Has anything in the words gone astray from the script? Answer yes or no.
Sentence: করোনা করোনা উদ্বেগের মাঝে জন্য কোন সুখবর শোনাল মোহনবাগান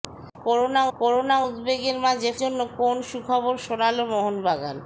no